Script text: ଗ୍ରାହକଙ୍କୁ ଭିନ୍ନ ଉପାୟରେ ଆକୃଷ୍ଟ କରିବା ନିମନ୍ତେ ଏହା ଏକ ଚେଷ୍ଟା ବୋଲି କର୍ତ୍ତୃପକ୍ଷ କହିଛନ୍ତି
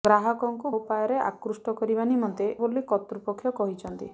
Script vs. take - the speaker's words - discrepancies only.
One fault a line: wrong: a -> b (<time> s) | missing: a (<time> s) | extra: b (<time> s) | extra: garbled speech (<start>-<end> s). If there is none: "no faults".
missing: ଭିନ୍ନ (0.7 s)
missing: ଏହା ଏକ ଚେଷ୍ଟା (2.5 s)